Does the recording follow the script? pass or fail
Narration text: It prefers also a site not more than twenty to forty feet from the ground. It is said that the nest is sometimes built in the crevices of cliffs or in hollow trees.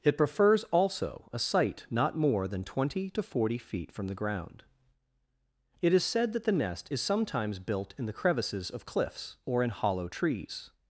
pass